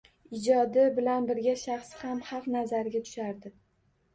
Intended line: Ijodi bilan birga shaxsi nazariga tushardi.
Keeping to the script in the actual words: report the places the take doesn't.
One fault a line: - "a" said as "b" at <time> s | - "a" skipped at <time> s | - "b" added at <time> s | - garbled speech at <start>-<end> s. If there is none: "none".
- "ham xalq" added at 2.1 s